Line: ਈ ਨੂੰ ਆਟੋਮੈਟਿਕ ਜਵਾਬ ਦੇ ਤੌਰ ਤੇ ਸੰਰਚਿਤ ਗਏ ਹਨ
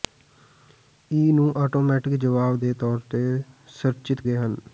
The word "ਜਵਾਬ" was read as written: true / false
true